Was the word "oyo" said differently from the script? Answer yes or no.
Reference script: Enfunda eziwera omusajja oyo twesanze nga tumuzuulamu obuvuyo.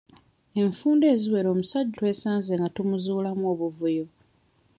yes